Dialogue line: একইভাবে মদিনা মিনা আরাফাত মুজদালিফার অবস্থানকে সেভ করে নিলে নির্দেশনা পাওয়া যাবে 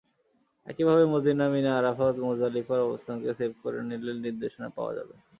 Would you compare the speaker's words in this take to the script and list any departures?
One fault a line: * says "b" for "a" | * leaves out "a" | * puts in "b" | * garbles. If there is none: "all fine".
all fine